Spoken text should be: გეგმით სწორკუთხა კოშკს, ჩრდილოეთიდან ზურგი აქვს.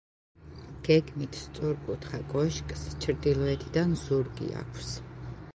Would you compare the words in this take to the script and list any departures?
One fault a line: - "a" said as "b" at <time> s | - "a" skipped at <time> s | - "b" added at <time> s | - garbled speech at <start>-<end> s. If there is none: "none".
none